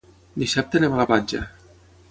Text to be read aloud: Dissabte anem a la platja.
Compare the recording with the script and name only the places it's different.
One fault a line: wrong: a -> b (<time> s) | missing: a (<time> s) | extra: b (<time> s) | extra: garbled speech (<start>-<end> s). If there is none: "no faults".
no faults